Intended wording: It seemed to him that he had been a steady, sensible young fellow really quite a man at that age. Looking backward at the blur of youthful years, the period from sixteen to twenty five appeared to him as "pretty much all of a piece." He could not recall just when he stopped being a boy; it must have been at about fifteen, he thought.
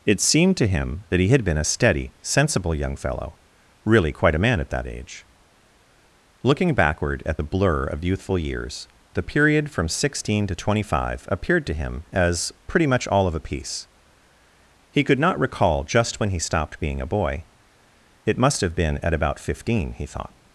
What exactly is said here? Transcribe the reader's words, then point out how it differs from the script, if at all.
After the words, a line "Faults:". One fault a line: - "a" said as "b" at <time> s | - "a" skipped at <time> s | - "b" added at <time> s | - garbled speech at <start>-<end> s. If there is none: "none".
It seemed to him that he had been a steady, sensible young fellow really quite a man at that age. Looking backward at the blur of youthful years, the period from sixteen to twenty five appeared to him as "pretty much all of a piece." He could not recall just when he stopped being a boy; it must have been at about fifteen, he thought.
Faults:
none